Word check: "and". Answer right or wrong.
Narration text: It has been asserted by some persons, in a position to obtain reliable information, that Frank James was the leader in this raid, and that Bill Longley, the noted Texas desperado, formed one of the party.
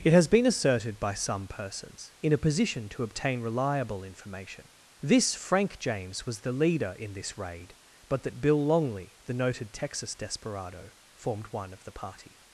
wrong